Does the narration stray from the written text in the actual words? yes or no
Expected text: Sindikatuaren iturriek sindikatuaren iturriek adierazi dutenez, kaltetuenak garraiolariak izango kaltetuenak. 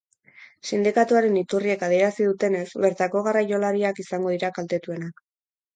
yes